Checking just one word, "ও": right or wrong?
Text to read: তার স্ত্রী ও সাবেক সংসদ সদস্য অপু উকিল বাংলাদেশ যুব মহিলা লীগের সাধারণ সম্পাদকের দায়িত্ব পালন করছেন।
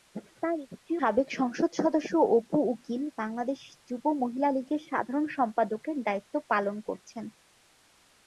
wrong